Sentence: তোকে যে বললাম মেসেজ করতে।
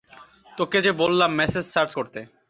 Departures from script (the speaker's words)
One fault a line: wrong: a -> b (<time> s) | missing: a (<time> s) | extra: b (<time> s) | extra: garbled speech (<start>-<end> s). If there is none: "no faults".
extra: সার্চ (1.6 s)